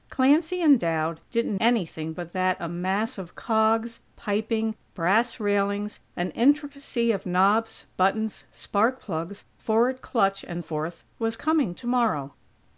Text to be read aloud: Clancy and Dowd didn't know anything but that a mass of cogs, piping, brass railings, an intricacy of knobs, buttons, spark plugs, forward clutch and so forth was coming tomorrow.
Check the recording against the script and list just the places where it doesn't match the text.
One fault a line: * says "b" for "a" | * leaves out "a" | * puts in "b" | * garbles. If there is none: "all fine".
* leaves out "know"
* leaves out "so"